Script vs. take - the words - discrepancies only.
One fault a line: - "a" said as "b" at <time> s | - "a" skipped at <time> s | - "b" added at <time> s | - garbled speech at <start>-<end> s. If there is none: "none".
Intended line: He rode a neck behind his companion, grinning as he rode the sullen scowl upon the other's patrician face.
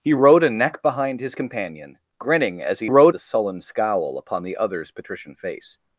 none